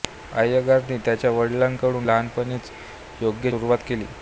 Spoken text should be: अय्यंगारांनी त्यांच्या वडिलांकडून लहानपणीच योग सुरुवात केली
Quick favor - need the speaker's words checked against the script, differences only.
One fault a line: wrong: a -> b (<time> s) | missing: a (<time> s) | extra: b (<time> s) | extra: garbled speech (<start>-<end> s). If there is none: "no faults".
no faults